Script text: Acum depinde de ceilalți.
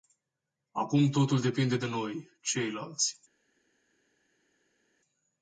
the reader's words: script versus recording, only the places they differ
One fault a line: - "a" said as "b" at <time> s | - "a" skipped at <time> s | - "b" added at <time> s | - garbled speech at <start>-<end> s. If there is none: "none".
- "totul" added at 1.1 s
- "noi" added at 1.9 s